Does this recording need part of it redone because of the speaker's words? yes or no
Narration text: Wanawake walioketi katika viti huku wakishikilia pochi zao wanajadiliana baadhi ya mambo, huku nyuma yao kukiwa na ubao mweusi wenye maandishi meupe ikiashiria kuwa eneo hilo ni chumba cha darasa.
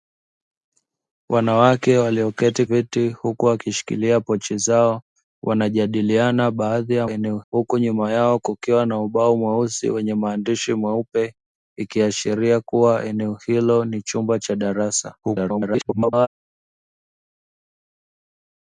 yes